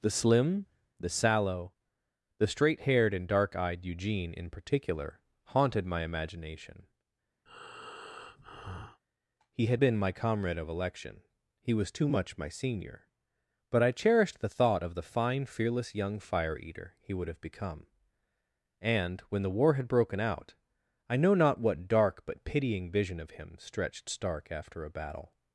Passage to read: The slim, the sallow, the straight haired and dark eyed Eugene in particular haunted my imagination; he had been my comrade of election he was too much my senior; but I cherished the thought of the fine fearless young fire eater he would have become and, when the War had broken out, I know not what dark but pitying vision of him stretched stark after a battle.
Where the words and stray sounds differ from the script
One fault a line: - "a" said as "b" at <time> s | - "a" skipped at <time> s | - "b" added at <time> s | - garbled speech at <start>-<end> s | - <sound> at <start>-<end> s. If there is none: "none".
- breath at 7.5-9.0 s